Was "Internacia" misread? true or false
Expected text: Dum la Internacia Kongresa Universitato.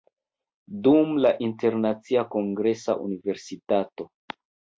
false